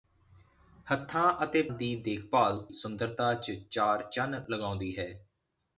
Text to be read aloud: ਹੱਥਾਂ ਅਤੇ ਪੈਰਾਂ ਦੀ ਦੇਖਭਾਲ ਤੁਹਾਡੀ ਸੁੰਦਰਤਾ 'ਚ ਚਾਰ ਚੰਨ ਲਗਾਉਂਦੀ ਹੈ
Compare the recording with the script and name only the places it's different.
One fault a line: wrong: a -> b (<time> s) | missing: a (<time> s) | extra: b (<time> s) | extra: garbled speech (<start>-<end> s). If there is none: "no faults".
missing: ਪੈਰਾਂ (1.6 s)
missing: ਤੁਹਾਡੀ (2.6 s)